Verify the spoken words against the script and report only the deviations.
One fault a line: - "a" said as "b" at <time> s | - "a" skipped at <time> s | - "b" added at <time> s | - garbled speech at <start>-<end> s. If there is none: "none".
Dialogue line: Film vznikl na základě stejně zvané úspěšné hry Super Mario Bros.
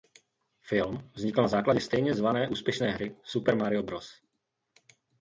none